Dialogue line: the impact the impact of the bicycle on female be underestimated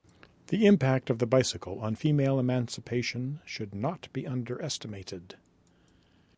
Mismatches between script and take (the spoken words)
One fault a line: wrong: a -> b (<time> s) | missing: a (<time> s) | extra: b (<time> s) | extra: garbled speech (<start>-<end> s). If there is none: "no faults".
missing: the impact (1.1 s)
extra: emancipation should not (2.4 s)